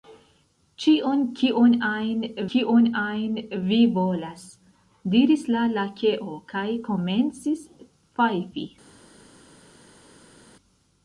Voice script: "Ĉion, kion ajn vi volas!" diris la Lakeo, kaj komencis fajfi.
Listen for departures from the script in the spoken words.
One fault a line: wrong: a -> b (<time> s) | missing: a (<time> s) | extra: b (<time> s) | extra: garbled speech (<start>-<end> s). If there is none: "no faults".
extra: kion ajn (2.5 s)